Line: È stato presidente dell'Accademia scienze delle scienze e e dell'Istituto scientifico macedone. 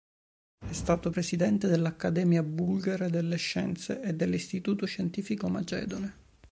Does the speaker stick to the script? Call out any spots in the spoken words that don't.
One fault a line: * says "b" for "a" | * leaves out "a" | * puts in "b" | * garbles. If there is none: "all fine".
* says "bulgara" for "scienze"
* leaves out "e"